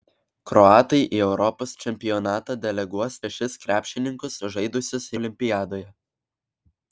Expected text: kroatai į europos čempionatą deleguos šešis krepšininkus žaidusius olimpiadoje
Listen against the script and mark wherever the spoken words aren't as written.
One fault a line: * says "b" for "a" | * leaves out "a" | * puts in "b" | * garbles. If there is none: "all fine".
all fine